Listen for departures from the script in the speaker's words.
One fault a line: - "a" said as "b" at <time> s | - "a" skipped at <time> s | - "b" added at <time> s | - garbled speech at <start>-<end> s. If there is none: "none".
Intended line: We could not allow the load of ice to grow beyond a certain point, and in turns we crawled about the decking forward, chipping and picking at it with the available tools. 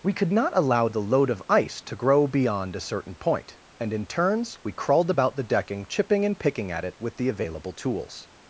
- "forward" skipped at 5.8 s